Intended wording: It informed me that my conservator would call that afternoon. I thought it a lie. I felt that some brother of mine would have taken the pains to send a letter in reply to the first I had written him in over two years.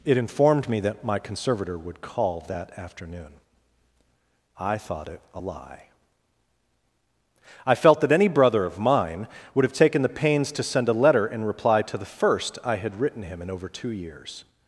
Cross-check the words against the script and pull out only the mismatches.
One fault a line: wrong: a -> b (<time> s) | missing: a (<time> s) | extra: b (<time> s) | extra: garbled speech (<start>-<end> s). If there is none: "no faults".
wrong: some -> any (8.1 s)